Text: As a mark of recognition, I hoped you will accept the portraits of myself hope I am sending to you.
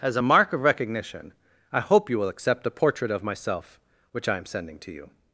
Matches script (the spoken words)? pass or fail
fail